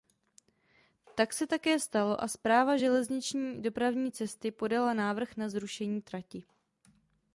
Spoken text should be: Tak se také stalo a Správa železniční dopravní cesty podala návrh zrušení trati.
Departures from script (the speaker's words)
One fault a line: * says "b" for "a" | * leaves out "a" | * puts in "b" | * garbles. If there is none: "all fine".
* puts in "na"